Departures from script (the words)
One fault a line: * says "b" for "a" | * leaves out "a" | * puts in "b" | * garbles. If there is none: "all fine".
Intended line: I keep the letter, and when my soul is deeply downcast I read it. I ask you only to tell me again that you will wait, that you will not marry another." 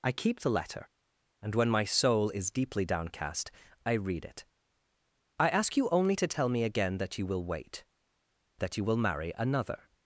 * leaves out "not"